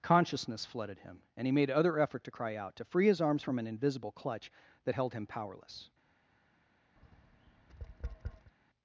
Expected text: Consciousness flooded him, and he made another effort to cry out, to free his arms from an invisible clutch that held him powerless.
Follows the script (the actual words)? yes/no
no